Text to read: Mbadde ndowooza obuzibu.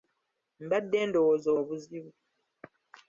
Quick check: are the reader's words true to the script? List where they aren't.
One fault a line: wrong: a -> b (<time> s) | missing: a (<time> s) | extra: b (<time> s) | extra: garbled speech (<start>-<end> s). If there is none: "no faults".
no faults